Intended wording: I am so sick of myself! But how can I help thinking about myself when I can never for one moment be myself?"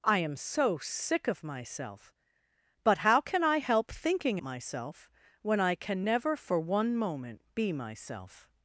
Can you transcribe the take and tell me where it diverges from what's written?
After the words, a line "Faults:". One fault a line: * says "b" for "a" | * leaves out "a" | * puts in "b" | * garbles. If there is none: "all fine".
I am so sick of myself! But how can I help thinking myself when I can never for one moment be myself?"
Faults:
* leaves out "about"